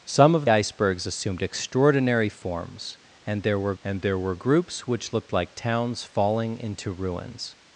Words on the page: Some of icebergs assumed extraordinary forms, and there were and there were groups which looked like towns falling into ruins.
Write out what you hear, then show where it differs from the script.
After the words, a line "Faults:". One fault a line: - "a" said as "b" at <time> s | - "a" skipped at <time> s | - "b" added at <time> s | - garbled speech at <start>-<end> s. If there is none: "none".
Some of icebergs assumed extraordinary forms, and there were and there were groups which looked like towns falling into ruins.
Faults:
none